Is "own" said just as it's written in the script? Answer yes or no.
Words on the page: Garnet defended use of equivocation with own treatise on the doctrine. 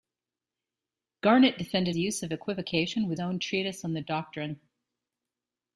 yes